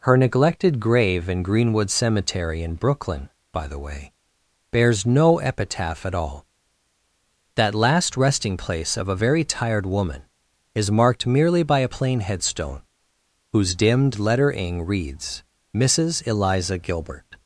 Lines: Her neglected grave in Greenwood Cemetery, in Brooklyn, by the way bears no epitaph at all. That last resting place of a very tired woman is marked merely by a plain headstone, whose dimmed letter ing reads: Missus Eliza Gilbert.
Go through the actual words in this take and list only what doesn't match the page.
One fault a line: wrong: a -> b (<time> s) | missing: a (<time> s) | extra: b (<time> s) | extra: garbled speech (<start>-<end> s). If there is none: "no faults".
no faults